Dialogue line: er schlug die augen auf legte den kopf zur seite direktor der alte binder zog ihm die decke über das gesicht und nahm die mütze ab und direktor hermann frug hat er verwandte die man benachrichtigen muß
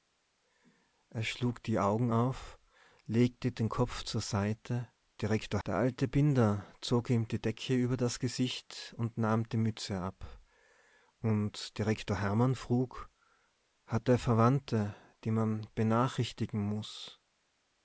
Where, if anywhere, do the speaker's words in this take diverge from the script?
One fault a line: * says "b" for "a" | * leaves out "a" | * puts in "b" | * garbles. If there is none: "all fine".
all fine